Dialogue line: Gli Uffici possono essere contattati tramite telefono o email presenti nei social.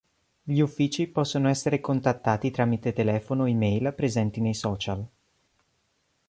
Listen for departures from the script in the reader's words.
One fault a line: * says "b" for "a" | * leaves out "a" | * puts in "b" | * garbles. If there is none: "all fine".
all fine